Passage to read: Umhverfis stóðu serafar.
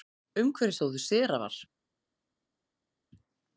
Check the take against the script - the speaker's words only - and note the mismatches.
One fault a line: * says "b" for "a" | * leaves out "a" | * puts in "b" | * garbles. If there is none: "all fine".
all fine